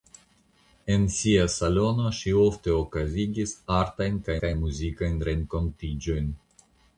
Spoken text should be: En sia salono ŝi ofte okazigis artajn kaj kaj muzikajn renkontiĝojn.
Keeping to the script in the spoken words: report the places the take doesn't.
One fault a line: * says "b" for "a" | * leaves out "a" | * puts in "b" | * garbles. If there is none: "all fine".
all fine